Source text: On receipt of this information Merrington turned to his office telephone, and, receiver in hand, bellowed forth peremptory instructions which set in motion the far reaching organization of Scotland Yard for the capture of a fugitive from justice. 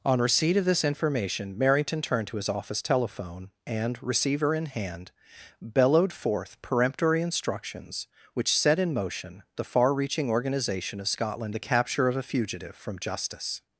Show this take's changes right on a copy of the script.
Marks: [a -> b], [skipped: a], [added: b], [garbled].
On receipt of this information Merrington turned to his office telephone, and, receiver in hand, bellowed forth peremptory instructions which set in motion the far reaching organization of Scotland [skipped: Yard for] the capture of a fugitive from justice.